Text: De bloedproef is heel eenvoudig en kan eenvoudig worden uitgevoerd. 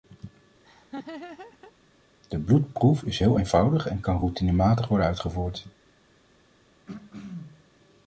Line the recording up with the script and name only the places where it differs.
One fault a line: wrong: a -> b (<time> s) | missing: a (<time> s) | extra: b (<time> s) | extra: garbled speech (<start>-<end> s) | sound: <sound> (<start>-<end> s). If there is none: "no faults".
sound: laugh (0.6-1.7 s)
wrong: eenvoudig -> routinematig (4.2 s)
sound: throat clearing (6.9-7.7 s)